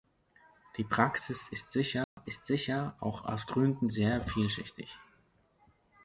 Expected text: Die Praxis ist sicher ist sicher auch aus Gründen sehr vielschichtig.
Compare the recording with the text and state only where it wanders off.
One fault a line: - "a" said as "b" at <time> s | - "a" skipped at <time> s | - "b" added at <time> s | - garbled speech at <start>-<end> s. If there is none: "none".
none